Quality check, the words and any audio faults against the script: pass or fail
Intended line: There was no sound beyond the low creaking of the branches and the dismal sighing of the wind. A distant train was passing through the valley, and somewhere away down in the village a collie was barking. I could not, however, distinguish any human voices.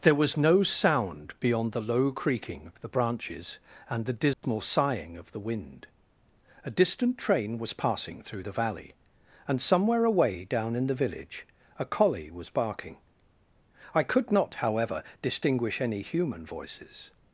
fail